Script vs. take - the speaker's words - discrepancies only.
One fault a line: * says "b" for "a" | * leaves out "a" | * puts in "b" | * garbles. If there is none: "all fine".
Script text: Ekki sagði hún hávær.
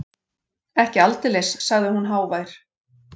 * puts in "aldeilis"